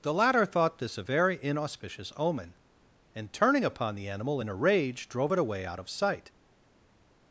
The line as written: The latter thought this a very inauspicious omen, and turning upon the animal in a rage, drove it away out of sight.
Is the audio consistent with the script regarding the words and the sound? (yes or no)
yes